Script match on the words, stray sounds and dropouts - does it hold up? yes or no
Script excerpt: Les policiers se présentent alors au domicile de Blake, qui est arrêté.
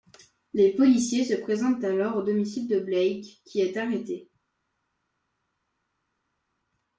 yes